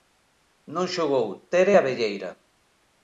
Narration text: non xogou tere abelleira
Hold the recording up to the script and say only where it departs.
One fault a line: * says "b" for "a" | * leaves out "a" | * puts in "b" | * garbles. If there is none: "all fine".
all fine